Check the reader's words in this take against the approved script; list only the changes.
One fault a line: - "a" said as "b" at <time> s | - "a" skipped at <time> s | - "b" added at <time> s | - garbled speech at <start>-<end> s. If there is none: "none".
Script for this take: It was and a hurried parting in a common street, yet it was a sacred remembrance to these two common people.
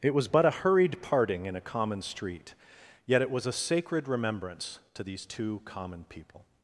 - "and" said as "but" at 0.3 s